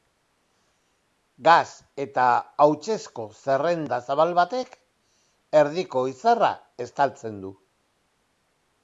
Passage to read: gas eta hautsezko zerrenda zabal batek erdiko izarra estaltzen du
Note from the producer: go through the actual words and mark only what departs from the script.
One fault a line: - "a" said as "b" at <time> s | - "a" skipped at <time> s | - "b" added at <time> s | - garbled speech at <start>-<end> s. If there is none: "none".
none